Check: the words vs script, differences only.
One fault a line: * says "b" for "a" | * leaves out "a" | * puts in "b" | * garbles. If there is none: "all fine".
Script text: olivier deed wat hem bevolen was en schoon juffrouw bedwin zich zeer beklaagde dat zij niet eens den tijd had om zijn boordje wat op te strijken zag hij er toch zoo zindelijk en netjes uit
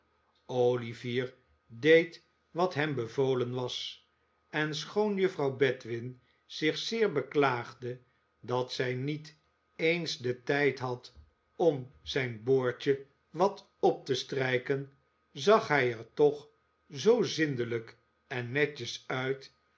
all fine